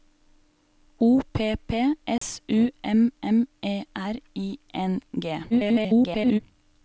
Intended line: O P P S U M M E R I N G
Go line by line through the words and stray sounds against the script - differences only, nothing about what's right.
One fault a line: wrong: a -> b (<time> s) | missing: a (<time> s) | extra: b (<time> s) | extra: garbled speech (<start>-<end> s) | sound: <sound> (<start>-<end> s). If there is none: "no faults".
sound: dropout (2.2-2.2 s)
extra: garbled speech (5.5-6.4 s)